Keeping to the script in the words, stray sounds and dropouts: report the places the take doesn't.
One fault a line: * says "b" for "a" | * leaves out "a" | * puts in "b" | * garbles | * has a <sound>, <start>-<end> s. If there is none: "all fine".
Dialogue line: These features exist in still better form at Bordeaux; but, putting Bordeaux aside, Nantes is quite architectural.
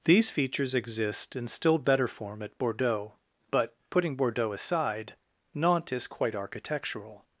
all fine